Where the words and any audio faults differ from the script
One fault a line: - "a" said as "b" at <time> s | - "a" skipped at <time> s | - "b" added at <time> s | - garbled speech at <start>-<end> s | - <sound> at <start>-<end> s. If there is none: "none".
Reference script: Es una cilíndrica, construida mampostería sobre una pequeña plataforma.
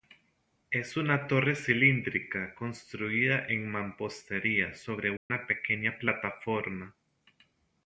- "torre" added at 1.3 s
- "en" added at 3.5 s
- dropout at 5.2-5.3 s